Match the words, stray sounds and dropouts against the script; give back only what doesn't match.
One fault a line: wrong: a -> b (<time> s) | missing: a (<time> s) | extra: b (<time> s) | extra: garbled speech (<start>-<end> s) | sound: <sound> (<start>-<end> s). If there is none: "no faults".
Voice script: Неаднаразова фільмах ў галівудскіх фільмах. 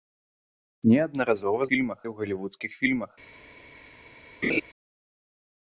sound: laugh (4.4-4.6 s)